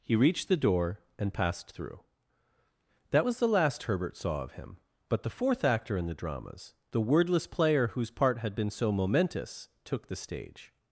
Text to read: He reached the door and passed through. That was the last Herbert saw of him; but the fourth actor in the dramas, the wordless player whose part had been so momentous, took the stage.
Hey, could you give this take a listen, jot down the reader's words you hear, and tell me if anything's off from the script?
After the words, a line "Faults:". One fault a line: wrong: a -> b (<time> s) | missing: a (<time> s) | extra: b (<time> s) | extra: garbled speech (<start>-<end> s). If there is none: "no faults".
He reached the door and passed through. That was the last Herbert saw of him; but the fourth actor in the dramas, the wordless player whose part had been so momentous, took the stage.
Faults:
no faults